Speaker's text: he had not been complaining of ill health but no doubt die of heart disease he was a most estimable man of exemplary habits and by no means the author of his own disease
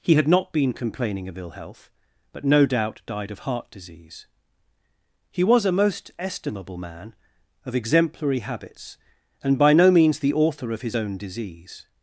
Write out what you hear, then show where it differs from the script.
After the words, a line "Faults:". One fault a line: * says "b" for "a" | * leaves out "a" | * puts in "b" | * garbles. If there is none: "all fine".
he had not been complaining of ill health but no doubt died of heart disease he was a most estimable man of exemplary habits and by no means the author of his own disease
Faults:
* says "died" for "die"